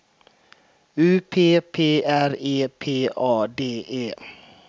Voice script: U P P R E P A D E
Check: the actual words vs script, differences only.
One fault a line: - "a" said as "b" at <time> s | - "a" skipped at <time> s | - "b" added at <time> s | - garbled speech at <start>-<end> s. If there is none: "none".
none